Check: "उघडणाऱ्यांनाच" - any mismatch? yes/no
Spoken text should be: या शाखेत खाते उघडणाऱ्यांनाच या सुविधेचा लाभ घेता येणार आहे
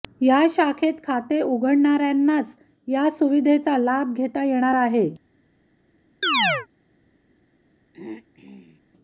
no